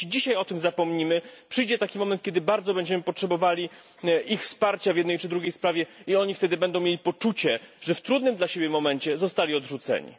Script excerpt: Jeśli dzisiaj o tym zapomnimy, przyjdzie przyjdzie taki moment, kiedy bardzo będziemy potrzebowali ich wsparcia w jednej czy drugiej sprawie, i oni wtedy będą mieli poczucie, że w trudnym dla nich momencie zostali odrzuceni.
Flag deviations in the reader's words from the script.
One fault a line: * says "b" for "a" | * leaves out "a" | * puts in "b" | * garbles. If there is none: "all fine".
* leaves out "przyjdzie"